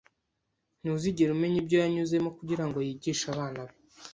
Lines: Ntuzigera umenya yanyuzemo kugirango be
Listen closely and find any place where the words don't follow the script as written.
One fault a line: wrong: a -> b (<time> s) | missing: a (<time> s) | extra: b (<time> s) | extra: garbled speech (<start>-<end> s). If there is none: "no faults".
extra: ibyo (1.6 s)
extra: yigishe abana (2.9 s)